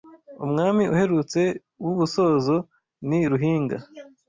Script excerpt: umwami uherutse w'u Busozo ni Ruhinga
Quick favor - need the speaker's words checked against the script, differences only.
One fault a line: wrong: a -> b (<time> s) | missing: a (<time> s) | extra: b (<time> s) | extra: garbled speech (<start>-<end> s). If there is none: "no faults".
no faults